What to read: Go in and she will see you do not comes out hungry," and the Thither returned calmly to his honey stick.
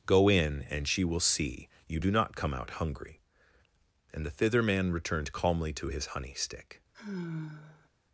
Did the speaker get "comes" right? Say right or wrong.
wrong